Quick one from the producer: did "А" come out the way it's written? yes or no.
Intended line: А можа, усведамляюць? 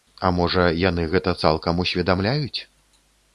yes